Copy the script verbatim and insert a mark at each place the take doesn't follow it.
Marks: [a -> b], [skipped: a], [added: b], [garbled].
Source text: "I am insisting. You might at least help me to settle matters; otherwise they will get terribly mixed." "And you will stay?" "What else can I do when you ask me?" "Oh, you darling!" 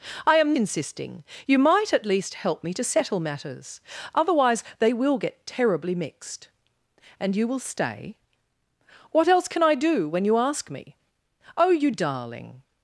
"I am insisting. You might at least help me to settle matters; otherwise they will get terribly mixed." "And you will stay?" "What else can I do when you ask me?" "Oh, you darling!"